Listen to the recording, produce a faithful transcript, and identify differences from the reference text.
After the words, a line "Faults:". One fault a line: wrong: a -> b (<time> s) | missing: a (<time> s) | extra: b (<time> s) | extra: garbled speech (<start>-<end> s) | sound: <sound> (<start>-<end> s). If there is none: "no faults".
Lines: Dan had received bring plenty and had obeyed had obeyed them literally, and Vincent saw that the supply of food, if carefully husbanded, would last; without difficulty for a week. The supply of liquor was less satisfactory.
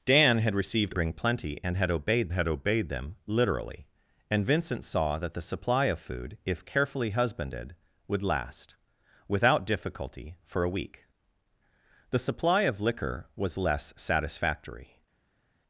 Dan had received bring plenty and had obeyed had obeyed them literally, and Vincent saw that the supply of food, if carefully husbanded, would last; without difficulty for a week. The supply of liquor was less satisfactory.
Faults:
no faults